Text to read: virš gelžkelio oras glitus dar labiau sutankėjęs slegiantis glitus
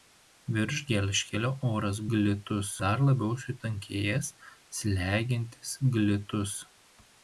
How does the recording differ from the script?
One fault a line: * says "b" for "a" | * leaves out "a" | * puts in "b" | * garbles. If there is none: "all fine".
all fine